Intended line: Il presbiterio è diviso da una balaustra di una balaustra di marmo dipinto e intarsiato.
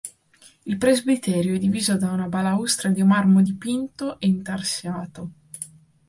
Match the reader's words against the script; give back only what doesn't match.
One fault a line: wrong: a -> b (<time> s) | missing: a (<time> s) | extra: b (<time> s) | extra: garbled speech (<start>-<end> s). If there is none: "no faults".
missing: una balaustra di (3.0 s)